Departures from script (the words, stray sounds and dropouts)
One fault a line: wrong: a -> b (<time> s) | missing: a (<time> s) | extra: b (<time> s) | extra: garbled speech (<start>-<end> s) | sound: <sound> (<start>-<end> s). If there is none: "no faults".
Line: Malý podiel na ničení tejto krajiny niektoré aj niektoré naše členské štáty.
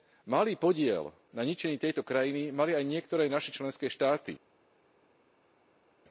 wrong: niektoré -> mali (2.5 s)